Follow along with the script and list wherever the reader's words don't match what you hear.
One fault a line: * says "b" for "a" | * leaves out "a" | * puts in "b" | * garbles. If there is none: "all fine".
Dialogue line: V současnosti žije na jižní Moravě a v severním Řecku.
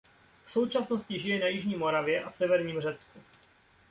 all fine